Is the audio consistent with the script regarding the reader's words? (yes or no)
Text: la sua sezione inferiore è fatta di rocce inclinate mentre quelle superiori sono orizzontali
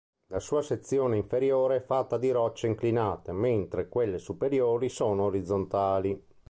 yes